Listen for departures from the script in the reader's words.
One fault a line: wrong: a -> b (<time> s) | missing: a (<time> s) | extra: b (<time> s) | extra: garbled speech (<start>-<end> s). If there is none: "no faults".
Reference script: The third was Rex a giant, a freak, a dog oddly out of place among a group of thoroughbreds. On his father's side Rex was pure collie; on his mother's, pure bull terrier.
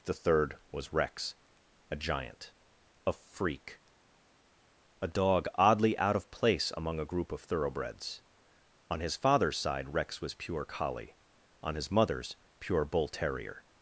no faults